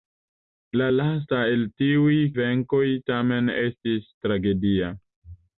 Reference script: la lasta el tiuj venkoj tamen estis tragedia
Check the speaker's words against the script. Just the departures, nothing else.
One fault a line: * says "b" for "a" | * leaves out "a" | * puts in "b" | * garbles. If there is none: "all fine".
all fine